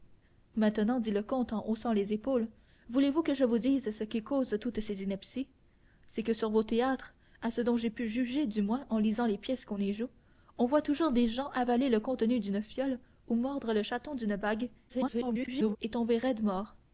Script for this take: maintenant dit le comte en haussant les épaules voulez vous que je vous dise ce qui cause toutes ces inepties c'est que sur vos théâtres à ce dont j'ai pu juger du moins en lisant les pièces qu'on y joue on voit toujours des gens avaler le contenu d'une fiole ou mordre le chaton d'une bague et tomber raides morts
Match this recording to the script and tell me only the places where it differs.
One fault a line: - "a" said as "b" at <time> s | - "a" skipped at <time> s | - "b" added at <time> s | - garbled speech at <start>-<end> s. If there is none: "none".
- garbled speech at 14.9-15.8 s